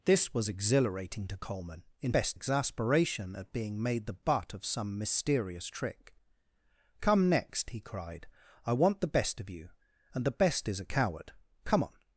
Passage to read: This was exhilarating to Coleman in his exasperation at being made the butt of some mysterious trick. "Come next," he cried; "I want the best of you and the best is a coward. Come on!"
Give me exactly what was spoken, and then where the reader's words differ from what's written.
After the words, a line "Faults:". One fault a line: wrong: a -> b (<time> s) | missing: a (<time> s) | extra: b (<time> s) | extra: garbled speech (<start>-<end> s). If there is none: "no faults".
This was exhilarating to Coleman in best exasperation at being made the butt of some mysterious trick. "Come next," he cried; "I want the best of you and the best is a coward. Come on!"
Faults:
wrong: his -> best (2.1 s)